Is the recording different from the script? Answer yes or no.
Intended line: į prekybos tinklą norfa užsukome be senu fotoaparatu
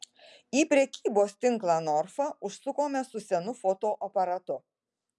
yes